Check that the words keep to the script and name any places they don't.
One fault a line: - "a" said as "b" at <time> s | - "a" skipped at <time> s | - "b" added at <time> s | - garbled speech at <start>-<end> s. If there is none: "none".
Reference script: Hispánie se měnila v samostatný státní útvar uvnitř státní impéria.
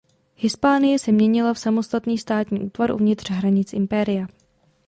- "státní" said as "hranic" at 3.3 s